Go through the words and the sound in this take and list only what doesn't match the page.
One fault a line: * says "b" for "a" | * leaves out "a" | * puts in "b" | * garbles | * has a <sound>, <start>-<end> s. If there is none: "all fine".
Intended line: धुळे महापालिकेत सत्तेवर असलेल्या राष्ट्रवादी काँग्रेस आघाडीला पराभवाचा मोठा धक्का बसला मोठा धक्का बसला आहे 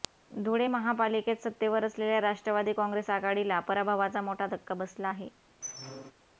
* leaves out "मोठा धक्का बसला"
* has a squeak, 5.6-6.1 s